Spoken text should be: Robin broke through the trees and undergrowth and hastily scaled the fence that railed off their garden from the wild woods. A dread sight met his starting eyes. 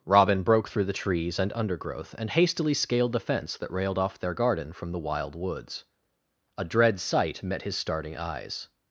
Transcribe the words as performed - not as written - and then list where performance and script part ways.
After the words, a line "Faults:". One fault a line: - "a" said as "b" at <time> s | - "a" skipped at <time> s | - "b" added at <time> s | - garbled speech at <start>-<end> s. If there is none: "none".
Robin broke through the trees and undergrowth and hastily scaled the fence that railed off their garden from the wild woods. A dread sight met his starting eyes.
Faults:
none